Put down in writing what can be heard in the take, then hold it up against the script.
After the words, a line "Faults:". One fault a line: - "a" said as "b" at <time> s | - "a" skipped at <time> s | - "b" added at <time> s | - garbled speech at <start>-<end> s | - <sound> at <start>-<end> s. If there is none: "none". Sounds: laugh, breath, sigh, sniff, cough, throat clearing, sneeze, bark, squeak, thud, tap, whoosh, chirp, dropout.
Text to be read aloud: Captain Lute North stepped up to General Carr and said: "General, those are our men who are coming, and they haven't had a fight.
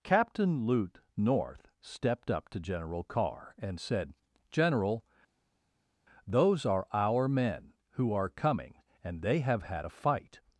Captain Lute North stepped up to General Carr and said: "General, those are our men who are coming, and they have had a fight.
Faults:
- "haven't" said as "have" at 9.4 s